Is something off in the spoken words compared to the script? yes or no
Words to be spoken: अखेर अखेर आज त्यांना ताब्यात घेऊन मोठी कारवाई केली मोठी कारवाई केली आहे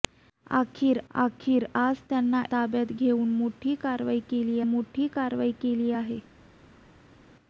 no